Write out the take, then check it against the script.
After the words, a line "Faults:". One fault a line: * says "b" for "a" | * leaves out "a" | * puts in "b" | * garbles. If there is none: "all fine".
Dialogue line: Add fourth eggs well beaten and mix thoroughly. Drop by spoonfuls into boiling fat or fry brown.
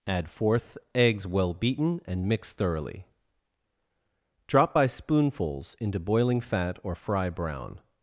Add fourth eggs well beaten and mix thoroughly. Drop by spoonfuls into boiling fat or fry brown.
Faults:
all fine